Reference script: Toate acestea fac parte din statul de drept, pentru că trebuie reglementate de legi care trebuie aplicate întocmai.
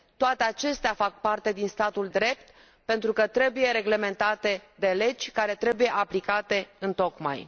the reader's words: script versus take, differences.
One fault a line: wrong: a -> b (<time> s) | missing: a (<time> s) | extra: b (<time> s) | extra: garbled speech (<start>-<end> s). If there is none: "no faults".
missing: de (2.1 s)